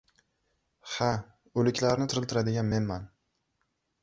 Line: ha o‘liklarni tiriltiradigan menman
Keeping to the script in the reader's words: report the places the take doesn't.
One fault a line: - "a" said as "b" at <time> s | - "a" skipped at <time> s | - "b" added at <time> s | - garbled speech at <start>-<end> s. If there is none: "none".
none